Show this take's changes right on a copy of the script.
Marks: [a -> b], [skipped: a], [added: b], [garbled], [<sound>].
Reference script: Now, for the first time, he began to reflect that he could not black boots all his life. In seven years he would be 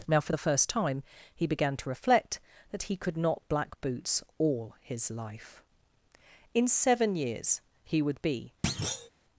Now, for the first time, he began to reflect that he could not black boots all his life. In seven years he would be [thud]